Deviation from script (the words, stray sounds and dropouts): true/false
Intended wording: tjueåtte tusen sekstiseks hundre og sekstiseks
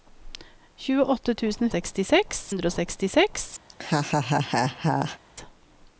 true